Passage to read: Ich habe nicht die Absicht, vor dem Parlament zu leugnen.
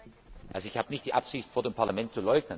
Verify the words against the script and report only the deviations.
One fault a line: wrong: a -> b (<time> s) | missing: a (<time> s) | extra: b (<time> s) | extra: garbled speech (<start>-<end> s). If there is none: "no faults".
no faults